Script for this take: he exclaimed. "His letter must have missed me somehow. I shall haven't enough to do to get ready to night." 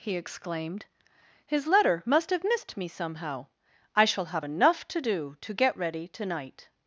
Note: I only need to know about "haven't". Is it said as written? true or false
false